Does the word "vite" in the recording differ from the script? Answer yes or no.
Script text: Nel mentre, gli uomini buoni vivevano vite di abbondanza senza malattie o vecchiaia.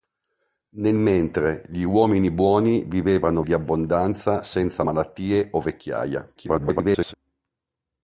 yes